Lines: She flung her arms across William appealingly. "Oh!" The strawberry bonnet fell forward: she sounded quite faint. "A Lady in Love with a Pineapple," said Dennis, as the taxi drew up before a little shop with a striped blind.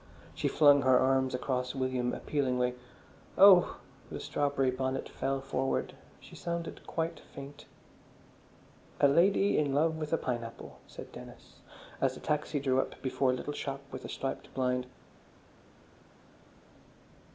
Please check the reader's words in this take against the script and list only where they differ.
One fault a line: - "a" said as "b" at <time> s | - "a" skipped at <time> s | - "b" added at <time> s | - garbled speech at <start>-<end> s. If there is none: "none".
none